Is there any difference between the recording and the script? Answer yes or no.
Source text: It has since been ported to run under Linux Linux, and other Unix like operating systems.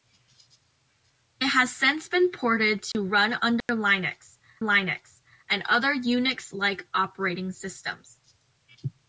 no